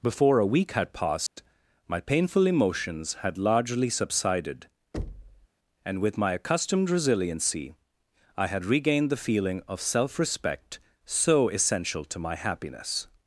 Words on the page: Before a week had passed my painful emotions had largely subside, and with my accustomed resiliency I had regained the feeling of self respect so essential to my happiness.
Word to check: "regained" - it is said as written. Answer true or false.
true